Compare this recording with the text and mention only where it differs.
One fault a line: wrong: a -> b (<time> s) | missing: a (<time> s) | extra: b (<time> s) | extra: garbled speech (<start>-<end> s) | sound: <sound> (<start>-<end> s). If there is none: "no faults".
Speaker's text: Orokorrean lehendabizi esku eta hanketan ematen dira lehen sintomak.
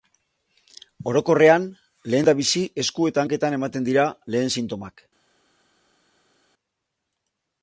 no faults